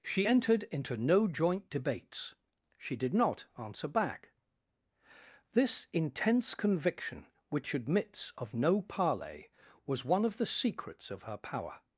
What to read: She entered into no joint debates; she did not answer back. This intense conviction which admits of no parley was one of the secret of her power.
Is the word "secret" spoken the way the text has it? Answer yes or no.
no